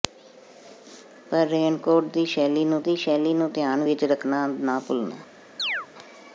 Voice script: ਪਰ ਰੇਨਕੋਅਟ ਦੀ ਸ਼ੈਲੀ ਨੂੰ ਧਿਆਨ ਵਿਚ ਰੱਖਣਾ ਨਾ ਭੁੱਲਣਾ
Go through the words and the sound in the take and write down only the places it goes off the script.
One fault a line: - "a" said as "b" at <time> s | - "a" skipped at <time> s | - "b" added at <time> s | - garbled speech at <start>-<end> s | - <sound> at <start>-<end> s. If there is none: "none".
- "ਦੀ ਸ਼ੈਲੀ ਨੂੰ" added at 2.8 s
- chirp at 5.6-5.9 s